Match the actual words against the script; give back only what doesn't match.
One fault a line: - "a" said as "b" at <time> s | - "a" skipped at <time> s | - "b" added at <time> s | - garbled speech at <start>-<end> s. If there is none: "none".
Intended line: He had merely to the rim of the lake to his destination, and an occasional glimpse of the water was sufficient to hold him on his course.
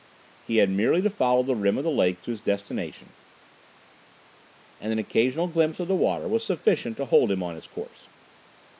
- "follow" added at 1.1 s